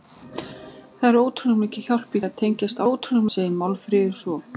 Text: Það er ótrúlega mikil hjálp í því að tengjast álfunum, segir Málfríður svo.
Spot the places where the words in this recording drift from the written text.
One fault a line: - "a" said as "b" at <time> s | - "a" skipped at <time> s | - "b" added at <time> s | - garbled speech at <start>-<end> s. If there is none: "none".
- "því" skipped at 2.2 s
- "álfunum" said as "ótrúlega" at 2.9 s